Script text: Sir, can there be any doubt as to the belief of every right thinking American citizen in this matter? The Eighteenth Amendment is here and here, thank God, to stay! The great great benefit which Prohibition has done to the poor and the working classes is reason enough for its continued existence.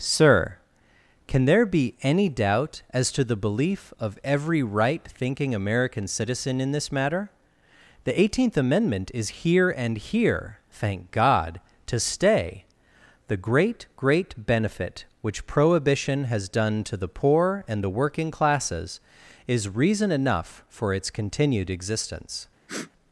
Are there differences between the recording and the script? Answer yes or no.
no